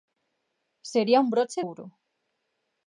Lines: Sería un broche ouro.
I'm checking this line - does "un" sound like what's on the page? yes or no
yes